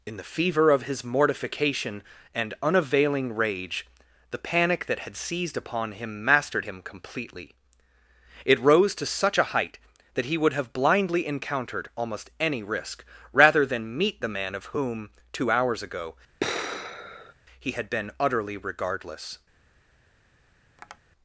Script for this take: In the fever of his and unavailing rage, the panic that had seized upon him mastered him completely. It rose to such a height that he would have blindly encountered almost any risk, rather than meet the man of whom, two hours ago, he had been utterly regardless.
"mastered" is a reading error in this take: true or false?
false